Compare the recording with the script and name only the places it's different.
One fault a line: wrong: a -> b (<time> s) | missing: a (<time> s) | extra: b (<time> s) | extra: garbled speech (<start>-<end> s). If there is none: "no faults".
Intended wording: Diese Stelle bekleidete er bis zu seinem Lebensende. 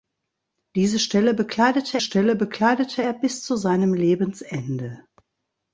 extra: Stelle bekleidete (2.0 s)